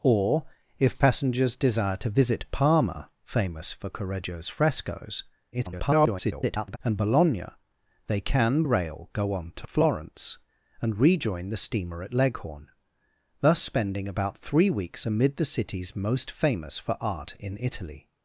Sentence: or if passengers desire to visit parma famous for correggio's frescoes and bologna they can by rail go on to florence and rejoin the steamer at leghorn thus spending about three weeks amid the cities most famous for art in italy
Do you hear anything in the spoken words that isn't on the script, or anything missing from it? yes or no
yes